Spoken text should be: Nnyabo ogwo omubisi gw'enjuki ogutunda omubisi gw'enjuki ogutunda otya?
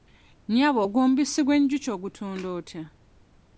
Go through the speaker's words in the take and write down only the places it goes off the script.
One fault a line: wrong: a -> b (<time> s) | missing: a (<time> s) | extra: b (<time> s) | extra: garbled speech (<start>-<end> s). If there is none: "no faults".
missing: omubisi gw'enjuki ogutunda (2.5 s)